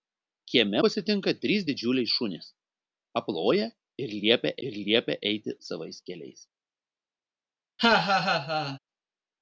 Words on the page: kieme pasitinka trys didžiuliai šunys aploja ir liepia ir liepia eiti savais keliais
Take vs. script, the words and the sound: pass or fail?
fail